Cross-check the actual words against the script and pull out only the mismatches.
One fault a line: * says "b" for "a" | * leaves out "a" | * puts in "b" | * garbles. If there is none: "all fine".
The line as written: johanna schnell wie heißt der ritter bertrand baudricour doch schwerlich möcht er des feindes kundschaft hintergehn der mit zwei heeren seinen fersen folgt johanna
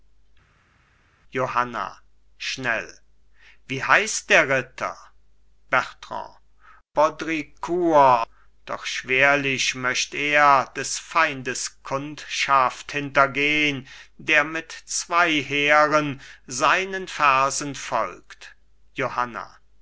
all fine